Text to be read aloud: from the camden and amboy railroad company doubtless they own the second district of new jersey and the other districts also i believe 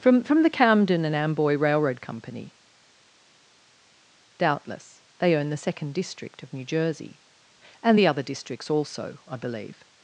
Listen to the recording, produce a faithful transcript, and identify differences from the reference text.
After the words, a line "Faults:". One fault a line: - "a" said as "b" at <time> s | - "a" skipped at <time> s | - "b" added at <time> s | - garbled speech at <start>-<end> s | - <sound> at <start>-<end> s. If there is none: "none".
from from the camden and amboy railroad company doubtless they own the second district of new jersey and the other districts also i believe
Faults:
- "from" added at 0.2 s